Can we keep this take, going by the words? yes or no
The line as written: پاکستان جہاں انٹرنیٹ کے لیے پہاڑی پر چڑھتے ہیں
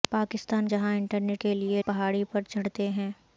yes